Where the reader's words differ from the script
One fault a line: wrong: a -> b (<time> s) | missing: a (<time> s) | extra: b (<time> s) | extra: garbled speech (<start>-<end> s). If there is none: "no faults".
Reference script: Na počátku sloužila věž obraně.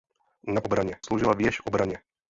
wrong: počátku -> obraně (0.6 s)